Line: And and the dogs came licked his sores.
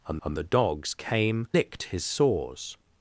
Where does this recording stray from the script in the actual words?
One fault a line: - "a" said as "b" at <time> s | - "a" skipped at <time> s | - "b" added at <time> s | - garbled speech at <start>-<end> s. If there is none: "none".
none